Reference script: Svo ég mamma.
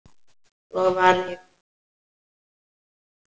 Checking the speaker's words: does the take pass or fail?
fail